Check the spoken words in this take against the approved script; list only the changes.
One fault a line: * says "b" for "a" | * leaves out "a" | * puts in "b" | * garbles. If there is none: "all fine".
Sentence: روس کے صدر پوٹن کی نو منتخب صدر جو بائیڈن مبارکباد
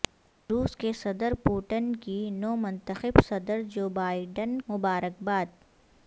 all fine